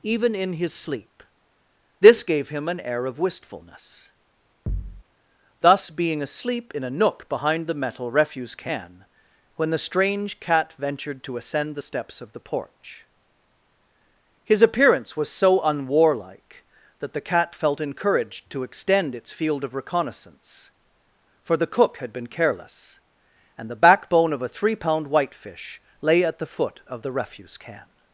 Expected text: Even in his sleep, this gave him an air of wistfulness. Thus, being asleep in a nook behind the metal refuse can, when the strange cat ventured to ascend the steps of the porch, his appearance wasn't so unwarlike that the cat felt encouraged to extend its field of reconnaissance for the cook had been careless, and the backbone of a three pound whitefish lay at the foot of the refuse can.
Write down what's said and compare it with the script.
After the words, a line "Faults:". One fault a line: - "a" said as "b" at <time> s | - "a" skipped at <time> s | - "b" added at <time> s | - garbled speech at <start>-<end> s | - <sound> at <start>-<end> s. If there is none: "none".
Even in his sleep, this gave him an air of wistfulness. Thus, being asleep in a nook behind the metal refuse can, when the strange cat ventured to ascend the steps of the porch, his appearance was so unwarlike that the cat felt encouraged to extend its field of reconnaissance for the cook had been careless, and the backbone of a three pound whitefish lay at the foot of the refuse can.
Faults:
- thud at 4.7-5.0 s
- "wasn't" said as "was" at 15.2 s